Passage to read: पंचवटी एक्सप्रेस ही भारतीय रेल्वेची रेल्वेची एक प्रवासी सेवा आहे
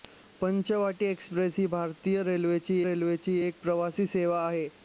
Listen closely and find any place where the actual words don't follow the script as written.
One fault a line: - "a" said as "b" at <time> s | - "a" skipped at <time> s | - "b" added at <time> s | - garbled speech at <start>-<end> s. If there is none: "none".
none